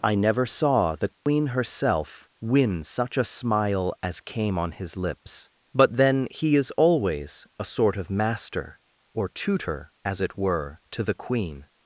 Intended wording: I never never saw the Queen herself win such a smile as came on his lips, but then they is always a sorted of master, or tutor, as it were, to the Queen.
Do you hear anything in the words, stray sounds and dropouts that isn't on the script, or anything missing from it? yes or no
yes